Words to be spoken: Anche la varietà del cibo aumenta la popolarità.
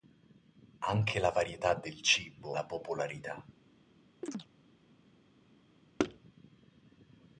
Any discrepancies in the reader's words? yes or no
yes